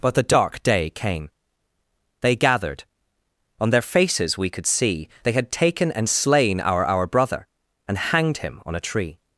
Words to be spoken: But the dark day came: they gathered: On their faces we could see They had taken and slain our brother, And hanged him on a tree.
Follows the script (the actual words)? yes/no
no